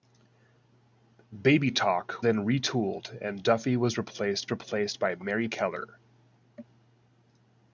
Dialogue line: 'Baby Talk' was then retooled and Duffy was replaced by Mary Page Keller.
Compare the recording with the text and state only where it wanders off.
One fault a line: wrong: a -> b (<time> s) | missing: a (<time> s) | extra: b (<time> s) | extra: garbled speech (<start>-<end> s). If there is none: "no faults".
missing: was (2.2 s)
extra: replaced (4.5 s)
missing: Page (5.5 s)